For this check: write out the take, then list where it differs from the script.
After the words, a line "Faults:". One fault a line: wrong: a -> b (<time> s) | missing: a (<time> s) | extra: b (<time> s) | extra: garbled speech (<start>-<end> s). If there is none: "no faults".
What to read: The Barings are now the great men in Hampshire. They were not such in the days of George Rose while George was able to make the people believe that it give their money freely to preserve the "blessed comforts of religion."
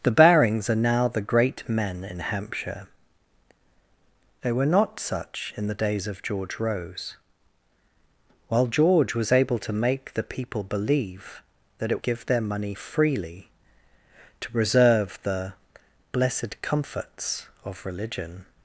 The Barings are now the great men in Hampshire. They were not such in the days of George Rose while George was able to make the people believe that it give their money freely to preserve the "blessed comforts of religion."
Faults:
no faults